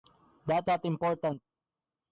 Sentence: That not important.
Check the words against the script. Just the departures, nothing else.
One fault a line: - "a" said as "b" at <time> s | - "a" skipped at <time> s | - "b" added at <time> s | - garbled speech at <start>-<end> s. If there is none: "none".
none